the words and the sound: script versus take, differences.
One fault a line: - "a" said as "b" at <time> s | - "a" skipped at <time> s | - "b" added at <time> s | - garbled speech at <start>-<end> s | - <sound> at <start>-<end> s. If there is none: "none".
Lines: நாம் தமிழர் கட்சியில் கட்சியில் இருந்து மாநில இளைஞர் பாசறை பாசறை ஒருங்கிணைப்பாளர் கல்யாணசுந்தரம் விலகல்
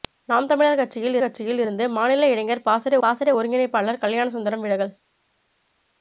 none